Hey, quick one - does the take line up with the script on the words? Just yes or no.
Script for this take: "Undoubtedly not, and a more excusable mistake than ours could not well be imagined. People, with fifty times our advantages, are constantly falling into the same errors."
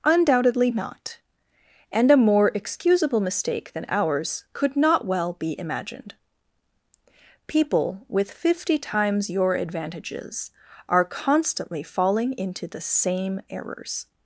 no